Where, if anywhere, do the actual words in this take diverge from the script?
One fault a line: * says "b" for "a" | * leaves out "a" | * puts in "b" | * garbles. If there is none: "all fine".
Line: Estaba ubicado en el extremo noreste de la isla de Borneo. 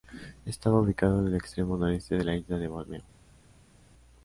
all fine